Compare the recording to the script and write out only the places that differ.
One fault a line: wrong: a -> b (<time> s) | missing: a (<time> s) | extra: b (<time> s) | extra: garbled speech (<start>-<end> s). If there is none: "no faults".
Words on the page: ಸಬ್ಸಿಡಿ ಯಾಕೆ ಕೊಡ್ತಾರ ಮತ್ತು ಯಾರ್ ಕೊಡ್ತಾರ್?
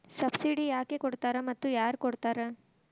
no faults